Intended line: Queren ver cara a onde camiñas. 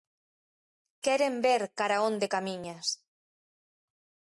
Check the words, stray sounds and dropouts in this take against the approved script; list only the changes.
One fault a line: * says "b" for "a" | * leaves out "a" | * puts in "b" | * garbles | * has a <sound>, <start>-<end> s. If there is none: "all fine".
all fine